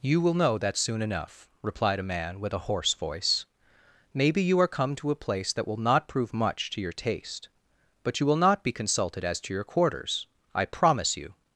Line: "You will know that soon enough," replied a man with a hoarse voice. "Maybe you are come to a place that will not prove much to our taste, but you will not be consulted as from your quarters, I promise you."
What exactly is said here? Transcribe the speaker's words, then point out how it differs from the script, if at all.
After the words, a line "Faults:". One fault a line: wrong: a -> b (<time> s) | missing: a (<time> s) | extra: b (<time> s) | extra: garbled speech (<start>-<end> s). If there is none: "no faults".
"You will know that soon enough," replied a man with a hoarse voice. "Maybe you are come to a place that will not prove much to your taste, but you will not be consulted as to your quarters, I promise you."
Faults:
wrong: our -> your (6.8 s)
wrong: from -> to (9.4 s)